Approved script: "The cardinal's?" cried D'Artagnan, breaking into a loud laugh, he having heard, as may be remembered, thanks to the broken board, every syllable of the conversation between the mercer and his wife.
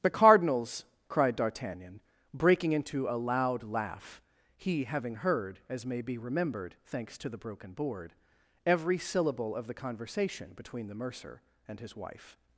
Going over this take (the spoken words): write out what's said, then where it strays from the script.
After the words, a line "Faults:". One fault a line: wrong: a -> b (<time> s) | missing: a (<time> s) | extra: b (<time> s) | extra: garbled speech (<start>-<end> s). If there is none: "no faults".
"The cardinal's?" cried D'Artagnan, breaking into a loud laugh, he having heard, as may be remembered, thanks to the broken board, every syllable of the conversation between the mercer and his wife.
Faults:
no faults